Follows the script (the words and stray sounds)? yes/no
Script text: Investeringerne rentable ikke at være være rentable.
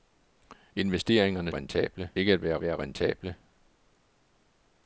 yes